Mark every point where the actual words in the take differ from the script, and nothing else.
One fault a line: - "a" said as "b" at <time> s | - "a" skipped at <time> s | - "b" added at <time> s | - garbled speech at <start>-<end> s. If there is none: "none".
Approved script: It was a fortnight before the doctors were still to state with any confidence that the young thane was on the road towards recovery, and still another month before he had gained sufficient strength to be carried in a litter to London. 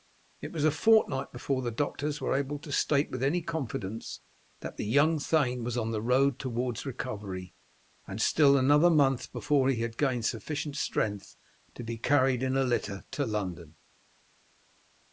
- "still" said as "able" at 2.4 s